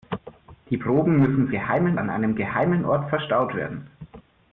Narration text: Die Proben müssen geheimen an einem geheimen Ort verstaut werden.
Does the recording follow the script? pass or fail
pass